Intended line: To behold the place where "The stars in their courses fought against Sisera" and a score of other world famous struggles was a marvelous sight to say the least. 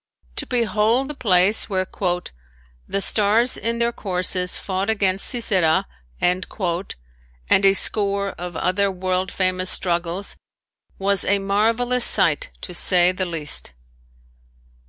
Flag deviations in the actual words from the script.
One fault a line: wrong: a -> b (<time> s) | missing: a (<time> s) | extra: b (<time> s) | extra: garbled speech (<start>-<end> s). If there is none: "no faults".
no faults